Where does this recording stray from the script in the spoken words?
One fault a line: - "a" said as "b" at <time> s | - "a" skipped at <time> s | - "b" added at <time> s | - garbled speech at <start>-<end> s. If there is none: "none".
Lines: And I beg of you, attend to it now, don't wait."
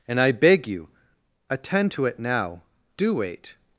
- "of" skipped at 0.7 s
- "don't" said as "do" at 3.0 s